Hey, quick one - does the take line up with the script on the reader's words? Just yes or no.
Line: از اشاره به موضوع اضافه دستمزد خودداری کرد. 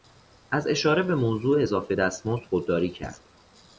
yes